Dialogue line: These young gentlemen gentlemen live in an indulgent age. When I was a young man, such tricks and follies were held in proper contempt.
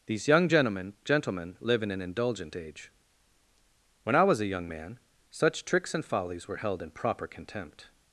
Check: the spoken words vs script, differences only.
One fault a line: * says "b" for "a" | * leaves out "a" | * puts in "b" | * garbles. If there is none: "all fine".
all fine